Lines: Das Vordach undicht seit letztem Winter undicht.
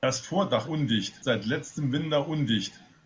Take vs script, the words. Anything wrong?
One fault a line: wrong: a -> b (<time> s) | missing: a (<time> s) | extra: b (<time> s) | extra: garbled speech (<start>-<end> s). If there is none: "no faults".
no faults